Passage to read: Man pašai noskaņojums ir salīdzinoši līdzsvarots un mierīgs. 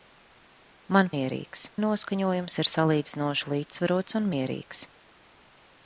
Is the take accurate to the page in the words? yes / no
no